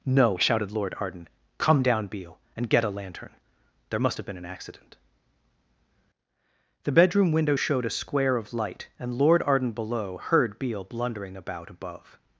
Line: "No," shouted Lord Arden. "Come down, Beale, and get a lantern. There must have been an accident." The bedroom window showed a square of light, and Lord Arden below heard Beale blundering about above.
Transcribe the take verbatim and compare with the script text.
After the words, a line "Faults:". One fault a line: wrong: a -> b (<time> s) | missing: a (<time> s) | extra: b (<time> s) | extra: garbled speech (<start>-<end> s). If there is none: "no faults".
"No," shouted Lord Arden. "Come down, Beale, and get a lantern. There must have been an accident." The bedroom window showed a square of light, and Lord Arden below heard Beale blundering about above.
Faults:
no faults